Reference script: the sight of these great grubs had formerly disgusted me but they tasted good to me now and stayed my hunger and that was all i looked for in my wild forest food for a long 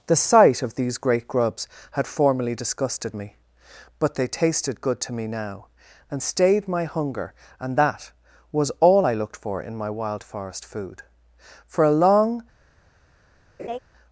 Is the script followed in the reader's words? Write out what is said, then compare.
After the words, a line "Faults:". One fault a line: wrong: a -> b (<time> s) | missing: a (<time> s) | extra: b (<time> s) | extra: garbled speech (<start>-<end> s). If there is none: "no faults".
the sight of these great grubs had formerly disgusted me but they tasted good to me now and stayed my hunger and that was all i looked for in my wild forest food for a long
Faults:
no faults